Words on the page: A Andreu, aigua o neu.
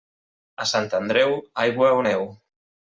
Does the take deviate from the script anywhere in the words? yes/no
yes